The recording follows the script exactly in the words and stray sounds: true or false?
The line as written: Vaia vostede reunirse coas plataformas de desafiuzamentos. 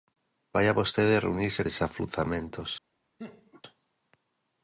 false